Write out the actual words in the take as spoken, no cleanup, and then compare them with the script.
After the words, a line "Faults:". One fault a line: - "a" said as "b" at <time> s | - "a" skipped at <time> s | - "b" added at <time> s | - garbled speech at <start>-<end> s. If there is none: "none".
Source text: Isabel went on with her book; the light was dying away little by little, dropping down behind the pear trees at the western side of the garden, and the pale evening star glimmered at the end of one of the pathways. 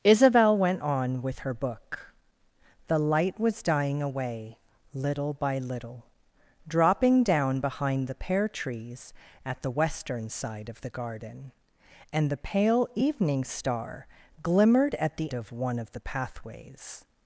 Isabel went on with her book; the light was dying away little by little, dropping down behind the pear trees at the western side of the garden, and the pale evening star glimmered at the of one of the pathways.
Faults:
- "end" skipped at 15.3 s